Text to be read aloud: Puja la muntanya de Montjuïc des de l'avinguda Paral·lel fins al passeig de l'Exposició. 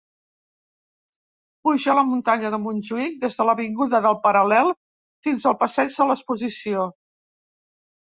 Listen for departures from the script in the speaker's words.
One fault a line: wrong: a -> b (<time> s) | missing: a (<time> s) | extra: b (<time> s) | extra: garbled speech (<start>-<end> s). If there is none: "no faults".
extra: del (4.1 s)